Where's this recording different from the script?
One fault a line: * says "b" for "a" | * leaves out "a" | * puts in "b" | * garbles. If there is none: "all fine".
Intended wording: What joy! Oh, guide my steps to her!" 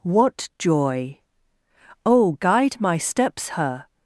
* leaves out "to"